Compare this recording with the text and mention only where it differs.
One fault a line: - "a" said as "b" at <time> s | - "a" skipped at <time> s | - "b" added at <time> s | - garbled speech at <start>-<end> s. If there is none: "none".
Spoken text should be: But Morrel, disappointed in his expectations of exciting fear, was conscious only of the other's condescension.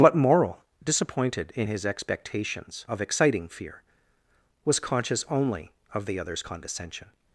none